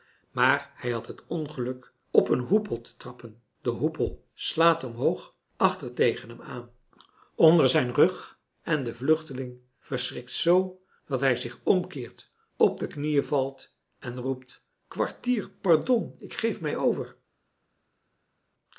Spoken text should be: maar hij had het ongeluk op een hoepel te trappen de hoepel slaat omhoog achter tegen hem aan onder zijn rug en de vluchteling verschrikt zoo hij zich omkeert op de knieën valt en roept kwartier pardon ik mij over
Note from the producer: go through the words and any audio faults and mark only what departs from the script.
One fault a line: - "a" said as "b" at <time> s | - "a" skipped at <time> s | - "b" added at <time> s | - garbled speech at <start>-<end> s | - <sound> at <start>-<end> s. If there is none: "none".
- "dat" added at 11.1 s
- "geef" added at 16.3 s